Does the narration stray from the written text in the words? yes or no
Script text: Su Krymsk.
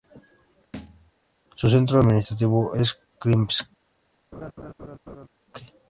yes